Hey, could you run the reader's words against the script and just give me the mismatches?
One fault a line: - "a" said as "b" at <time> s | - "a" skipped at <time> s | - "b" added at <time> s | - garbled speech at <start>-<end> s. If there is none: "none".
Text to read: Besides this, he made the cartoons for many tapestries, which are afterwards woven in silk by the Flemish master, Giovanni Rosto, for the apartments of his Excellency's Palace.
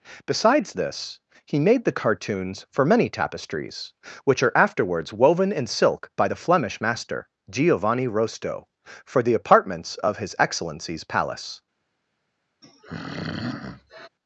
none